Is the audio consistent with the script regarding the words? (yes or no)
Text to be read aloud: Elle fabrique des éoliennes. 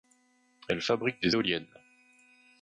yes